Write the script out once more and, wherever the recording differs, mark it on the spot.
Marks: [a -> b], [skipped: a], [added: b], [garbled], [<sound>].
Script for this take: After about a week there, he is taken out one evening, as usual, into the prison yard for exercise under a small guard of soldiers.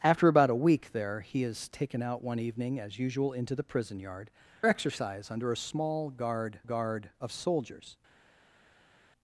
After about a week there, he is taken out one evening, as usual, into the prison yard [skipped: for] exercise under a small guard [added: guard] of soldiers.